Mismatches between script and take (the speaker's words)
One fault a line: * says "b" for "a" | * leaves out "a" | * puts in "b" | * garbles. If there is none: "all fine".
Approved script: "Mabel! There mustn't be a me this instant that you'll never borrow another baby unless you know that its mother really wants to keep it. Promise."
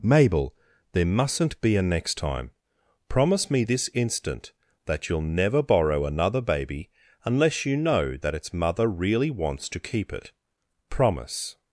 * puts in "next time Promise"